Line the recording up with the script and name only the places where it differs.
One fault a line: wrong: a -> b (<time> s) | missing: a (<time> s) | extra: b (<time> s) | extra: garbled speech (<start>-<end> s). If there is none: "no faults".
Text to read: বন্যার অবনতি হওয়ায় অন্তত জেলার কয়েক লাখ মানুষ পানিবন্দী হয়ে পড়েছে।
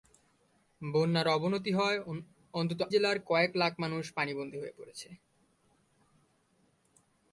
no faults